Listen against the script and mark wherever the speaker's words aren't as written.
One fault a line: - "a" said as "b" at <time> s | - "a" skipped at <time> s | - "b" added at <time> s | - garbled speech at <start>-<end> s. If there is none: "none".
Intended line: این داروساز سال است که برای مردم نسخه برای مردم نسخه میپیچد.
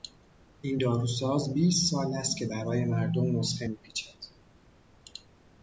- "بیست" added at 1.5 s
- "برای مردم نسخه" skipped at 3.7 s